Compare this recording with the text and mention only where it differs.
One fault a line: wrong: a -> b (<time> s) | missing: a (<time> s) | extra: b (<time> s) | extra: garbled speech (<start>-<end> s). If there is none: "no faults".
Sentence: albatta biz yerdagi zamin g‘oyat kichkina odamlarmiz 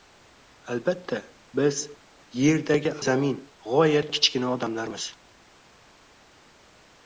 no faults